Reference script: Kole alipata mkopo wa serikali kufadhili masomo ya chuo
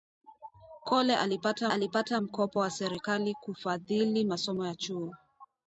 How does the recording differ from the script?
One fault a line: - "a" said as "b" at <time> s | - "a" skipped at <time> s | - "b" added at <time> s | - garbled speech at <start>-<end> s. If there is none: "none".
- "alipata" added at 1.7 s